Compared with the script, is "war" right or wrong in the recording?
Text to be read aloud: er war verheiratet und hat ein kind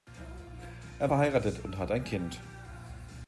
wrong